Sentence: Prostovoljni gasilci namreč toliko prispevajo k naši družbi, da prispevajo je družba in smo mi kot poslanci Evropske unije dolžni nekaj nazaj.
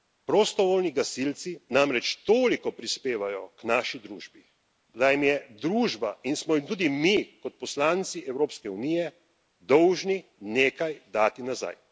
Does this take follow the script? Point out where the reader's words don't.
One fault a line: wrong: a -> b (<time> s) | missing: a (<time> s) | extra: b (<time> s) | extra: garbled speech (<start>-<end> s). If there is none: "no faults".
wrong: prispevajo -> jim (5.1 s)
extra: jim tudi (6.5 s)
extra: dati (11.1 s)